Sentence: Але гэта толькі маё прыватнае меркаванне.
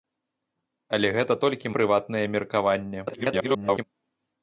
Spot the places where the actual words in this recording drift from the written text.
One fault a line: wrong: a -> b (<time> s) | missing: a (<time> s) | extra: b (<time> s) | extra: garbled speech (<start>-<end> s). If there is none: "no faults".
missing: маё (1.7 s)
extra: garbled speech (3.1-3.8 s)